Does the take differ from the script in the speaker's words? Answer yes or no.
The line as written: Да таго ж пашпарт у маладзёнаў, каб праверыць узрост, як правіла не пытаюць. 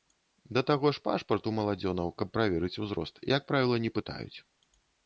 no